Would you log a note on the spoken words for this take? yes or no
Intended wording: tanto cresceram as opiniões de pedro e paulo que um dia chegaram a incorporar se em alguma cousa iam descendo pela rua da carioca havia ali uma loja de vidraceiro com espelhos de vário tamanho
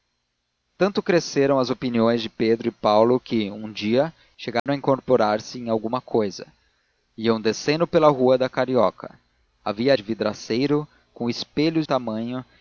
yes